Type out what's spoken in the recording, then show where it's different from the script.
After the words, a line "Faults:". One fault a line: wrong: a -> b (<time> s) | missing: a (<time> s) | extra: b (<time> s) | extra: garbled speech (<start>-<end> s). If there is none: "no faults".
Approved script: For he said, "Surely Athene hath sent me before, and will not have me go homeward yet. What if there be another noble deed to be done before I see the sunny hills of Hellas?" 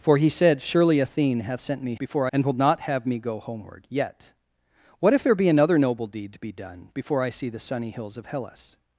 For he said, "Surely Athene hath sent me before, and will not have me go homeward yet. What if there be another noble deed to be done before I see the sunny hills of Hellas?"
Faults:
no faults